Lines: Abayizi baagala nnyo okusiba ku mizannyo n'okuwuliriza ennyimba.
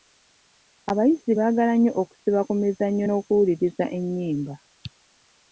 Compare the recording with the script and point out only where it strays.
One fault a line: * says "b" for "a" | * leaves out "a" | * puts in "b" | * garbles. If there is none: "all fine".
all fine